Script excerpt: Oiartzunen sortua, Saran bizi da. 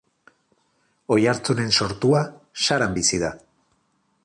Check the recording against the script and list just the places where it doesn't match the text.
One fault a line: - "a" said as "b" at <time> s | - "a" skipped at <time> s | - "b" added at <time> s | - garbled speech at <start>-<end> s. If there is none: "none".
none